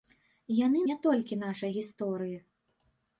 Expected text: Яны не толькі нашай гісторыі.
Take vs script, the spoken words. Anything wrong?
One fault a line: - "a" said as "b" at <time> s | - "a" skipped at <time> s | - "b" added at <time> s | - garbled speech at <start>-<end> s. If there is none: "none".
none